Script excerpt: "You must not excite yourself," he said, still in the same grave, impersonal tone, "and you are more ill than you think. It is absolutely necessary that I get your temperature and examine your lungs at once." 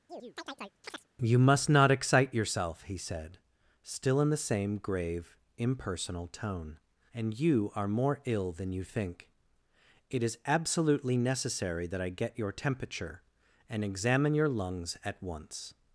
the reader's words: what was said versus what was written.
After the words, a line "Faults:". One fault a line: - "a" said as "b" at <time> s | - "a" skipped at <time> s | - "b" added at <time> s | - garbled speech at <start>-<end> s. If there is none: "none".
"You must not excite yourself," he said, still in the same grave, impersonal tone, "and you are more ill than you think. It is absolutely necessary that I get your temperature and examine your lungs at once."
Faults:
none